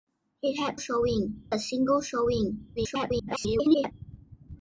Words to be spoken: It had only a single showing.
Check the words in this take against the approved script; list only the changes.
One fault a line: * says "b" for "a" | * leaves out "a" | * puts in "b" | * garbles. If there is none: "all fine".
* says "showing" for "only"
* garbles